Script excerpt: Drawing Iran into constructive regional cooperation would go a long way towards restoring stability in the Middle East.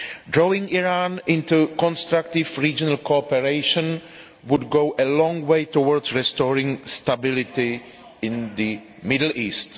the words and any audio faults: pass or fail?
pass